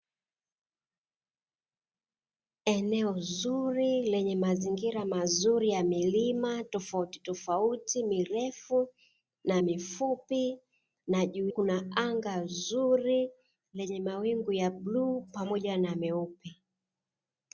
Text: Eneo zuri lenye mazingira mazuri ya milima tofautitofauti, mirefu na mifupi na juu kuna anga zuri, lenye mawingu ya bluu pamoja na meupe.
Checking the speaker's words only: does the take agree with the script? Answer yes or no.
yes